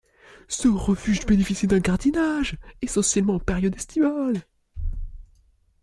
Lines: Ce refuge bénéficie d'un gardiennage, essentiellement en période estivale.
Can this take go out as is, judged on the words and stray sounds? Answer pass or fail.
pass